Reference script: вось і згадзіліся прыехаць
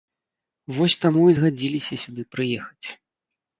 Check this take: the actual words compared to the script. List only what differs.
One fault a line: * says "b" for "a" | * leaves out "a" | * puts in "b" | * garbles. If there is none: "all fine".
* puts in "таму"
* puts in "сюды"